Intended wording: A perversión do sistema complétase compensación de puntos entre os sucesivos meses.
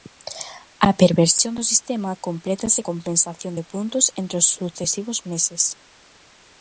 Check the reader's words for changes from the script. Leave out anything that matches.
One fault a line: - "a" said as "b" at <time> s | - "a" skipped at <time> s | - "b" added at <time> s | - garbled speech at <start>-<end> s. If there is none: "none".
none